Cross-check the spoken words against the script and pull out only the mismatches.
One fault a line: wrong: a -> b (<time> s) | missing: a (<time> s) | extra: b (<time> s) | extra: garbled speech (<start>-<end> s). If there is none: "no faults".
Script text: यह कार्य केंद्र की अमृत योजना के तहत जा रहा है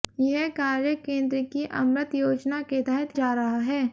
no faults